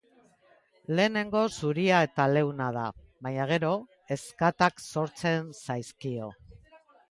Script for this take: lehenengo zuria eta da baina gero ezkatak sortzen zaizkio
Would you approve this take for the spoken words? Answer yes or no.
no